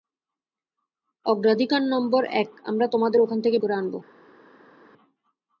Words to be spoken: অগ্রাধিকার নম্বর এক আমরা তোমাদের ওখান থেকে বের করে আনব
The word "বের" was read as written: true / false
false